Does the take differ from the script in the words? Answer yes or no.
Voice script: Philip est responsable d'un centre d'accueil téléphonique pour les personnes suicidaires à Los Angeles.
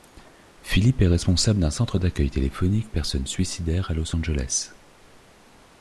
yes